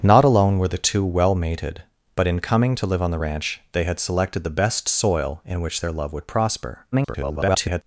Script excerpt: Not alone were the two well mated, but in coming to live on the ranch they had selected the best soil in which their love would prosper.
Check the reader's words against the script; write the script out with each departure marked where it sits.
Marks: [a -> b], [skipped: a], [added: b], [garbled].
Not alone were the two well mated, but in coming to live on the ranch they had selected the best soil in which their love would prosper. [garbled]